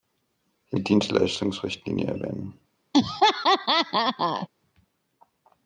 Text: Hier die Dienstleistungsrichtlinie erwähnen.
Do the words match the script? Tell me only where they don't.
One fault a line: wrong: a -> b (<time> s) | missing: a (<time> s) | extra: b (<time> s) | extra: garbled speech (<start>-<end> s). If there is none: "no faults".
no faults